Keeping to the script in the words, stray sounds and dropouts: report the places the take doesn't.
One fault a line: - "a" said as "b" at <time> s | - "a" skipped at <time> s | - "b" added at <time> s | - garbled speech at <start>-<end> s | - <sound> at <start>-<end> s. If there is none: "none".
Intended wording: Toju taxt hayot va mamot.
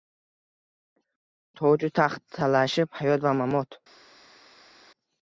- "talashib" added at 2.4 s